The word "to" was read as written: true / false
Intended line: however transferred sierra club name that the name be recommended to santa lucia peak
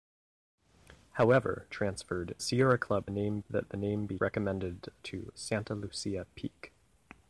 true